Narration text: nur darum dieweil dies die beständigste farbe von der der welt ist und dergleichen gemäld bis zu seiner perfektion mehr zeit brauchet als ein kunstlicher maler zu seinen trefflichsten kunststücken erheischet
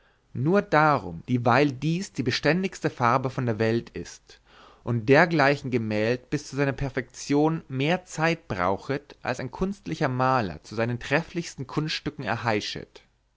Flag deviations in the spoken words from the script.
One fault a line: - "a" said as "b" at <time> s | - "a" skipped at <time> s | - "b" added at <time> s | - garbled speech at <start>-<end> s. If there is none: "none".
- "der" skipped at 3.6 s